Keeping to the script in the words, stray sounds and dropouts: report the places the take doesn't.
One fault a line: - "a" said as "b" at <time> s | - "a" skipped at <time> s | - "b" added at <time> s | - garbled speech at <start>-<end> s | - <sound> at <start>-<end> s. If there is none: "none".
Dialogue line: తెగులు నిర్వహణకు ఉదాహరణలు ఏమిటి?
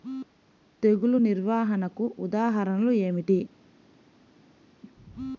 none